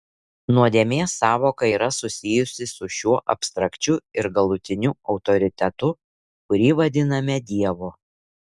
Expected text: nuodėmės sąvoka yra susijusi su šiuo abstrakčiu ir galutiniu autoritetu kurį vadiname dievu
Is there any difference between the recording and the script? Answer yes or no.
no